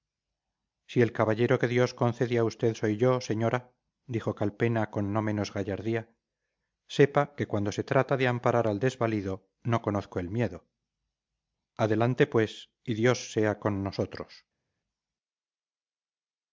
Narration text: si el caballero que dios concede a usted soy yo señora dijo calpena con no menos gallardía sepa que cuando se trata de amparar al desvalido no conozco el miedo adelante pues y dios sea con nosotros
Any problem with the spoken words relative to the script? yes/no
no